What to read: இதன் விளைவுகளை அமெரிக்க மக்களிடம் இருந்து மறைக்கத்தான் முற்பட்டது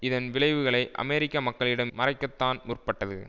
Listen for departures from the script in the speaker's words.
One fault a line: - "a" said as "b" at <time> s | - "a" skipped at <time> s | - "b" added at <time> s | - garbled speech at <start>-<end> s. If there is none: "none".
- "இருந்து" skipped at 1.9 s